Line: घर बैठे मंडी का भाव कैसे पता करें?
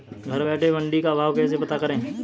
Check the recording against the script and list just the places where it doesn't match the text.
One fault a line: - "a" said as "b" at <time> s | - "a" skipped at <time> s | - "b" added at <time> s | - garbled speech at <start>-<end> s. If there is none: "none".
none